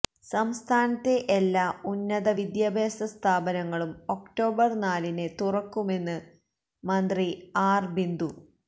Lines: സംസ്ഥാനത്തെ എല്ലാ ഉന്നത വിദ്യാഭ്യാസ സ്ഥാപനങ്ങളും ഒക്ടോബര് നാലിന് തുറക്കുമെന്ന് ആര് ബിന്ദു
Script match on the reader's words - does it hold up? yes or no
no